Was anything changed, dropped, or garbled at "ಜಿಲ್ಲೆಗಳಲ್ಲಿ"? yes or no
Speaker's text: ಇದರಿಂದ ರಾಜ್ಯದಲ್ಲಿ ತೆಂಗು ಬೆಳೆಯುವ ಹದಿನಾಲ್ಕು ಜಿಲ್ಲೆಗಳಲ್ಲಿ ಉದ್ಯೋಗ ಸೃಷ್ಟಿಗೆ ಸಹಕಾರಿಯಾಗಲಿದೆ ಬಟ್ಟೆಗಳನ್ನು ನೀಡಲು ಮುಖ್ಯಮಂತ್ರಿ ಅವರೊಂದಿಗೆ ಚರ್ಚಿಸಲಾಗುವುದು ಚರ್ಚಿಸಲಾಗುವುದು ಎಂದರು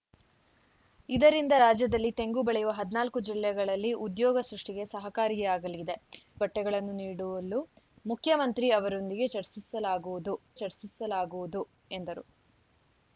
no